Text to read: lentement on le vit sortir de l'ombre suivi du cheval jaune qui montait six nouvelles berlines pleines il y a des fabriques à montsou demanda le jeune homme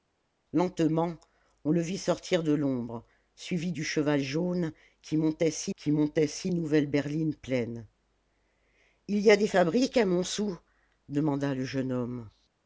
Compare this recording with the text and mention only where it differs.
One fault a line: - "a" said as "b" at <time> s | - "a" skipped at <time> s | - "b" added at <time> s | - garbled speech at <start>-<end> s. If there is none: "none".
- "qui montait six" added at 5.8 s